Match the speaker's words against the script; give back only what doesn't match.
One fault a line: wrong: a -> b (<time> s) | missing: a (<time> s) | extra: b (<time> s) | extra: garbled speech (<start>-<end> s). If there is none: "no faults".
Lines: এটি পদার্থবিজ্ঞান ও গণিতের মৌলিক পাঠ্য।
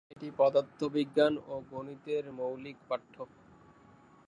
no faults